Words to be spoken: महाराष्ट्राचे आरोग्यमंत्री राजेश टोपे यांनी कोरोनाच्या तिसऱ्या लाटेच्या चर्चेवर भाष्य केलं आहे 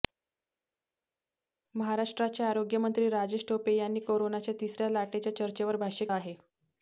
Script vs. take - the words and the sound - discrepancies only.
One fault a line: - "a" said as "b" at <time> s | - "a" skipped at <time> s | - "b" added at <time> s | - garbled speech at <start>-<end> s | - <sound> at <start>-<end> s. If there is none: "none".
- "केलं" skipped at 6.1 s